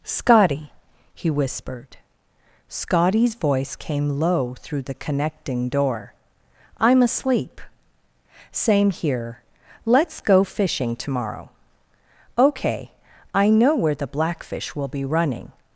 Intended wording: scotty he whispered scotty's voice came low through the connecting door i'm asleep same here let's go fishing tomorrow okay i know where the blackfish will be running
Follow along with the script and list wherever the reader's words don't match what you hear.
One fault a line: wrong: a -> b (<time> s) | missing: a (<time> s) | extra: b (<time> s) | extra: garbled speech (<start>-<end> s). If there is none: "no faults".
no faults